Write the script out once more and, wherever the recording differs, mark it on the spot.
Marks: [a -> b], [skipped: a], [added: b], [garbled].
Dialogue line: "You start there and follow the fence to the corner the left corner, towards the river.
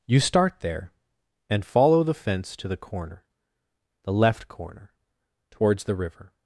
"You start there and follow the fence to the corner the left corner, towards the river.